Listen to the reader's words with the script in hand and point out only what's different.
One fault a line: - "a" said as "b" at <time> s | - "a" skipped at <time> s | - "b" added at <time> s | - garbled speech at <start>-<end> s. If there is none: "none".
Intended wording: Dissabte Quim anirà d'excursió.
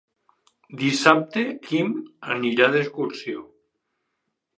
none